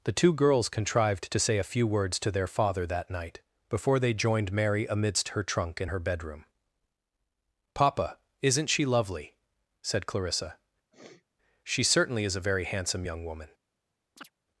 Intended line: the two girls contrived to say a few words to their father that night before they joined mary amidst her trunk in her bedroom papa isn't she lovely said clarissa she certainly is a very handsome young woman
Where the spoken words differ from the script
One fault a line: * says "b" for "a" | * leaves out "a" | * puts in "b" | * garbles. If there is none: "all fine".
all fine